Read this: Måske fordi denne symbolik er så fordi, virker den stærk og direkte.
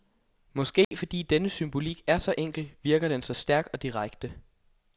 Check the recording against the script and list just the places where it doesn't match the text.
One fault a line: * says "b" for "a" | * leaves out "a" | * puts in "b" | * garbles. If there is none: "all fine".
* says "enkel" for "fordi"
* puts in "så"